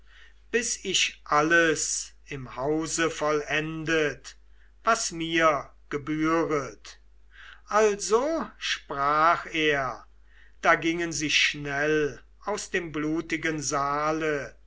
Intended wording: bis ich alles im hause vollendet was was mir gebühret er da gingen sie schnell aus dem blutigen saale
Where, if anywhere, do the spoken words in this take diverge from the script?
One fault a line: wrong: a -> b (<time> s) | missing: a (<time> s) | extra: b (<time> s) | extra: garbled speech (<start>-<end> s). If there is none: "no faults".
missing: was (5.1 s)
extra: also sprach (7.7 s)